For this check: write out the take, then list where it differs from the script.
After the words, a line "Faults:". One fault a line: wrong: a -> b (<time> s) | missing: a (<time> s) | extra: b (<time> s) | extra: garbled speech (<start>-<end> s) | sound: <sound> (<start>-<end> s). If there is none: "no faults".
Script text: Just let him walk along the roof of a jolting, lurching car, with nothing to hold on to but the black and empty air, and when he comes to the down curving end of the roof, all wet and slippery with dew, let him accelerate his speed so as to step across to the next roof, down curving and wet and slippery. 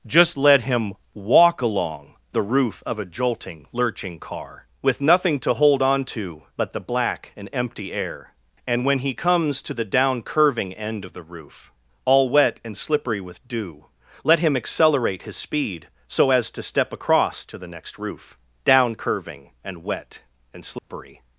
Just let him walk along the roof of a jolting, lurching car, with nothing to hold on to but the black and empty air, and when he comes to the down curving end of the roof, all wet and slippery with dew, let him accelerate his speed so as to step across to the next roof, down curving and wet and slippery.
Faults:
sound: dropout (20.8-20.9 s)